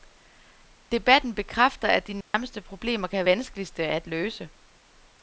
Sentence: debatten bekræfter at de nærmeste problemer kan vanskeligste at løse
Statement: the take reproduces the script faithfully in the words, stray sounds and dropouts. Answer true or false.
false